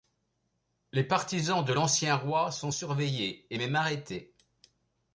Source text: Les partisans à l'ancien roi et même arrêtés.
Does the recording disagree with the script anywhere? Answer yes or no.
yes